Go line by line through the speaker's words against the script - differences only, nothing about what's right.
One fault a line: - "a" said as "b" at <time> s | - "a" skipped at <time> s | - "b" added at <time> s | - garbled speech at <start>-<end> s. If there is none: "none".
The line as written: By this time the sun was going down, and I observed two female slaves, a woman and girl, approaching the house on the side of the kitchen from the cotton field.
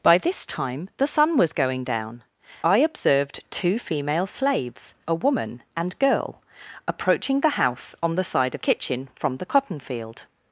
- "and" skipped at 2.2 s
- "the" skipped at 8.6 s